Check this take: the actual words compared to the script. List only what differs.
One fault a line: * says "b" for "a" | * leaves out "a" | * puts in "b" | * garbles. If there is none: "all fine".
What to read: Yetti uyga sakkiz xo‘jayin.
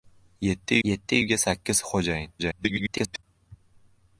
* puts in "yetti"
* garbles